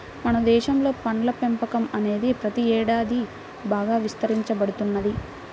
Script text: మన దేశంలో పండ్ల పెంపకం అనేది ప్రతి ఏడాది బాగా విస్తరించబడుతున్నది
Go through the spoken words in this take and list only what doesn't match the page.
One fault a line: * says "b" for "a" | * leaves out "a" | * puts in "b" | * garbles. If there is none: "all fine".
all fine